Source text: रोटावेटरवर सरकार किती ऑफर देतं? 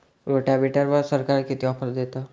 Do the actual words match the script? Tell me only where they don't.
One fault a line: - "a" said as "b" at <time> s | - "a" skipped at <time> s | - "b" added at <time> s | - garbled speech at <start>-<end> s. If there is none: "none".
none